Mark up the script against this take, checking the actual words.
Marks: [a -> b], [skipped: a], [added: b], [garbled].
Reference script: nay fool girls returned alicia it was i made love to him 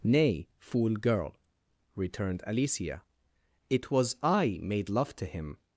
nay fool [girls -> girl] returned alicia it was i made love to him